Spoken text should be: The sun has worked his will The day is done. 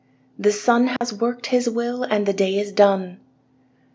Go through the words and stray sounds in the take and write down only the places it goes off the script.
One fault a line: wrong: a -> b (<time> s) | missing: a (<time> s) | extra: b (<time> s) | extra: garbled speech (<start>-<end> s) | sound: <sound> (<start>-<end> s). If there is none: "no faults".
sound: dropout (1.0-1.0 s)
extra: And (2.0 s)